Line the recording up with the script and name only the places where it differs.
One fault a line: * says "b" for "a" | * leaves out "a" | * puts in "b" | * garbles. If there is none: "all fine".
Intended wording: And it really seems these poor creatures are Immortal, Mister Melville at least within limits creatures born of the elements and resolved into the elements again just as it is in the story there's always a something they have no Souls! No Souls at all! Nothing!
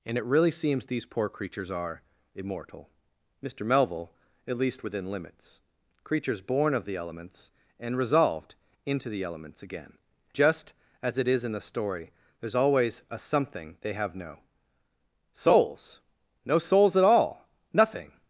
all fine